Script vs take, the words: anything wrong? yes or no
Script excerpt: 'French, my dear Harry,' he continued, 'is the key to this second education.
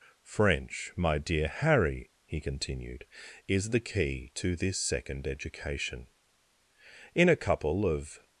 yes